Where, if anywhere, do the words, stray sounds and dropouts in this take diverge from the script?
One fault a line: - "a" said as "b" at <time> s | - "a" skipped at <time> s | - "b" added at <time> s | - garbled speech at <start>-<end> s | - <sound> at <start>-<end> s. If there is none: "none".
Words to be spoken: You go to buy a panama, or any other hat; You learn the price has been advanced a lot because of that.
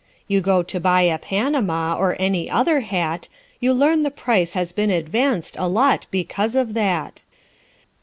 none